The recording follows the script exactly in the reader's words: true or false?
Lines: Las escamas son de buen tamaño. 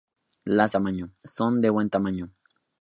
false